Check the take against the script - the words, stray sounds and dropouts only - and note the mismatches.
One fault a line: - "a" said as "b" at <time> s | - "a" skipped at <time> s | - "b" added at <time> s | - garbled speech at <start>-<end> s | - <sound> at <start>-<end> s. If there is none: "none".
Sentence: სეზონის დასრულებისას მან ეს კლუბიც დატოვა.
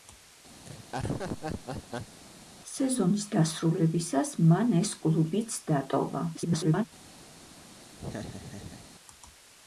- laugh at 0.6-2.2 s
- garbled speech at 6.3-6.8 s
- laugh at 8.0-8.9 s